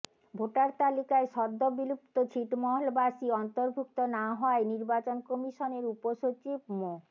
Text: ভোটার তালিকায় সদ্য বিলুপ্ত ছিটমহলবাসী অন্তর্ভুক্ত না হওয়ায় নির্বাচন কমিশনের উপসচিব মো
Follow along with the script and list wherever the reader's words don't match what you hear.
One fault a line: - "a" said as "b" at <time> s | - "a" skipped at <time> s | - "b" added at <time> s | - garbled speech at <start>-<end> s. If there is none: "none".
none